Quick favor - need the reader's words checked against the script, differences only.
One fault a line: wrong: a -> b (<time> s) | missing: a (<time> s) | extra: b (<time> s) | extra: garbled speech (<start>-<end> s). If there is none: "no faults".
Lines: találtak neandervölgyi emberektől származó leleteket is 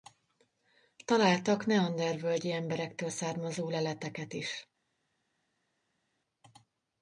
no faults